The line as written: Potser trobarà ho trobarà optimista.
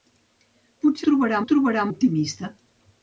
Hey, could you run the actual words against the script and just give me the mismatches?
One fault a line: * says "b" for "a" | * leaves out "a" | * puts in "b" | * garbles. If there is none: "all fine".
all fine